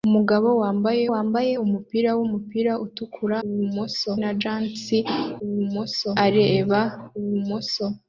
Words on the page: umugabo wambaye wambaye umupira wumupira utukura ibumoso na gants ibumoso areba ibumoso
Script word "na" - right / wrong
right